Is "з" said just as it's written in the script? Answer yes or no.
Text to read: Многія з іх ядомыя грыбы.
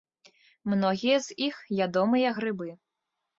yes